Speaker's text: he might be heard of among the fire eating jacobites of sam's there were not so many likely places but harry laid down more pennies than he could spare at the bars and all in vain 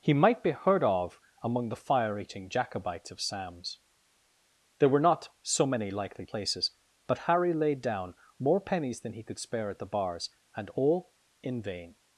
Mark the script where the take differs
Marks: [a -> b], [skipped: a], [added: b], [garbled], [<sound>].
he might be heard of among the fire eating jacobites of sam's there were not so many likely places but harry laid down more pennies than he could spare at the bars and all in vain